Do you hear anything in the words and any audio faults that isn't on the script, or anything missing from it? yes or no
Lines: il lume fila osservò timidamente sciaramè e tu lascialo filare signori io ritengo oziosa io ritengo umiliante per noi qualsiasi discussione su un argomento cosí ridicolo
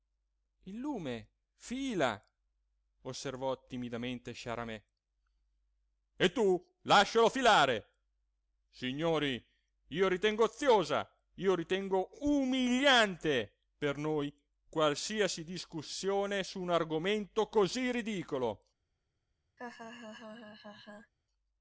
yes